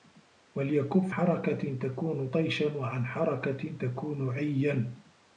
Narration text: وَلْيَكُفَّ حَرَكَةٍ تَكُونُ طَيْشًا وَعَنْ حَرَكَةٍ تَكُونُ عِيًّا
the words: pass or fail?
pass